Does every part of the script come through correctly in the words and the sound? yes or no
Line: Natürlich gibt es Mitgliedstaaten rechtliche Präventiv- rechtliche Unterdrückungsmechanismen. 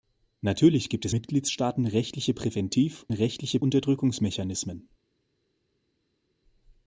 yes